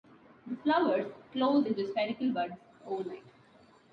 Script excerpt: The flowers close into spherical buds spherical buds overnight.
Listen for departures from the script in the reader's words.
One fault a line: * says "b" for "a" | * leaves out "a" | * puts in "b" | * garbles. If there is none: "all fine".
* leaves out "spherical buds"